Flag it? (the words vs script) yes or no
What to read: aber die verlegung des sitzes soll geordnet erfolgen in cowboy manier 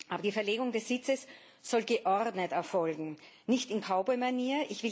yes